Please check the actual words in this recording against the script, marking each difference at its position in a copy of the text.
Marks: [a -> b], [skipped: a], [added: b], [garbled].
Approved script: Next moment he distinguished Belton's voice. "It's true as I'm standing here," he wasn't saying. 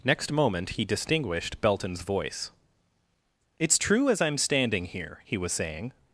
Next moment he distinguished Belton's voice. "It's true as I'm standing here," he [wasn't -> was] saying.